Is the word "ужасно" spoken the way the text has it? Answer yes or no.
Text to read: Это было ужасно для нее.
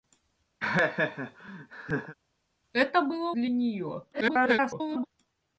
no